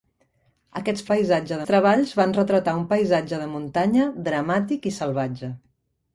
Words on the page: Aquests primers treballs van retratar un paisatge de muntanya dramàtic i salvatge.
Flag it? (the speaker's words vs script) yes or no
yes